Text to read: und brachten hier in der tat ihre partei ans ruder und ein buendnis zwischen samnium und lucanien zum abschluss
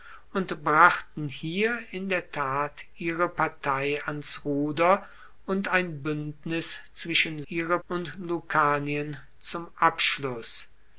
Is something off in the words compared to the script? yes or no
yes